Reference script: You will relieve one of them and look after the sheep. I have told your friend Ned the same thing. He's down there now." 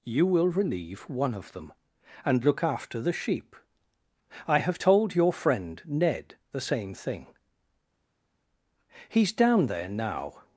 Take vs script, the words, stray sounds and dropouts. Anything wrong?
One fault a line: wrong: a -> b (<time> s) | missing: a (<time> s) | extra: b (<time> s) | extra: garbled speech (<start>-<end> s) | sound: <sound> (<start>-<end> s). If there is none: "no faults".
no faults